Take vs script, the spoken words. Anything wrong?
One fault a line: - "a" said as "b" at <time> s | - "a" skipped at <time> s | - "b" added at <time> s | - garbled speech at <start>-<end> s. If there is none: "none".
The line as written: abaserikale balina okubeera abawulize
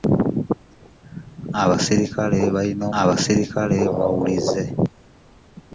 - "okubeera" said as "abaserikale" at 3.0 s